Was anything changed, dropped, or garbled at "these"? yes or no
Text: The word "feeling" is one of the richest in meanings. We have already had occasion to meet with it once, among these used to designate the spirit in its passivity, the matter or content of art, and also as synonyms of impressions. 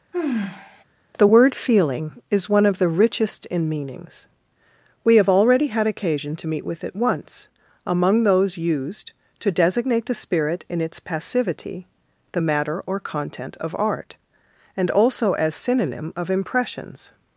yes